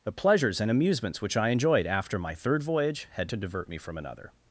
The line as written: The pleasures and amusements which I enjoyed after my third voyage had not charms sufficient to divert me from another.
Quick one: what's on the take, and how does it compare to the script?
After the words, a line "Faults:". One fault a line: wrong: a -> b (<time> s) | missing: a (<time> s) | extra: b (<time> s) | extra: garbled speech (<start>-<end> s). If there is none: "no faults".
The pleasures and amusements which I enjoyed after my third voyage had to divert me from another.
Faults:
missing: not charms sufficient (3.3 s)